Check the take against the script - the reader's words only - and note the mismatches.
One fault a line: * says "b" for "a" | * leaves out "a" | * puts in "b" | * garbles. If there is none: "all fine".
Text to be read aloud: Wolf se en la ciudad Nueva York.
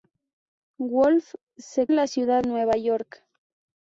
all fine